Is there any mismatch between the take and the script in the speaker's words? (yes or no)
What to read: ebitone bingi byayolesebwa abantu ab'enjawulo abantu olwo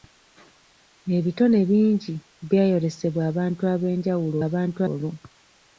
no